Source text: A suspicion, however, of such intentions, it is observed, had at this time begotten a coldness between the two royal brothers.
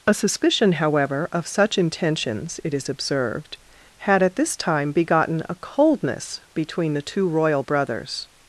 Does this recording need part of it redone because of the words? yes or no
no